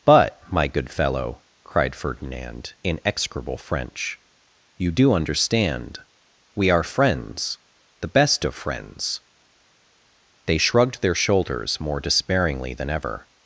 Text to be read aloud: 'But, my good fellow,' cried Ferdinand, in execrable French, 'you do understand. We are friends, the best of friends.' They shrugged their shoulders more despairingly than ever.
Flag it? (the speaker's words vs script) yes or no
no